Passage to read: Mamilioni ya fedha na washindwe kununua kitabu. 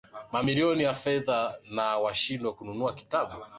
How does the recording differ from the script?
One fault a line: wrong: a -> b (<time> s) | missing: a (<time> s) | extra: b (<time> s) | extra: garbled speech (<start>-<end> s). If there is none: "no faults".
no faults